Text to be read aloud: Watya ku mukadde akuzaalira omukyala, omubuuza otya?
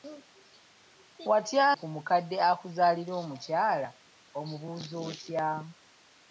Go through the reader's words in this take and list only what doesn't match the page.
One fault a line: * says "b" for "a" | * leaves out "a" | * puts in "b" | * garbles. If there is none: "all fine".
all fine